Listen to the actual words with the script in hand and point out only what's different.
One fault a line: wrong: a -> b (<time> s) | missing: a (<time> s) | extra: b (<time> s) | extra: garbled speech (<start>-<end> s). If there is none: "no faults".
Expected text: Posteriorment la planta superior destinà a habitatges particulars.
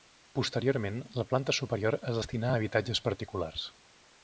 extra: es (2.0 s)